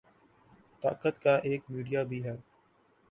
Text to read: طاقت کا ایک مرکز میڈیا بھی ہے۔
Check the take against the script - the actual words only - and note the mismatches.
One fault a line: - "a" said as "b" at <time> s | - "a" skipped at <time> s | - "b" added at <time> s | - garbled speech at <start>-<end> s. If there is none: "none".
- "مرکز" skipped at 1.6 s